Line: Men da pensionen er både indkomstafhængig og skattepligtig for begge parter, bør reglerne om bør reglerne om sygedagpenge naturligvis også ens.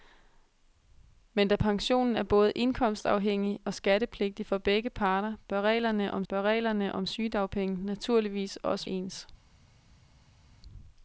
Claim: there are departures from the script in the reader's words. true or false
false